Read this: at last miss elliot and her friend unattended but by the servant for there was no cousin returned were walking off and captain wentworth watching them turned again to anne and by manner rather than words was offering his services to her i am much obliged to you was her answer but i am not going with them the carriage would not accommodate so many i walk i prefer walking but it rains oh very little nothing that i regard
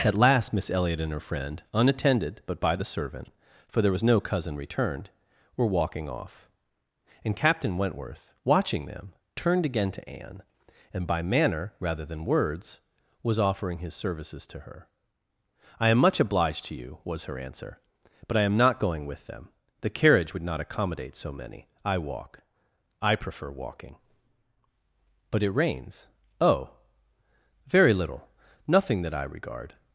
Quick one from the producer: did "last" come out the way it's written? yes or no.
yes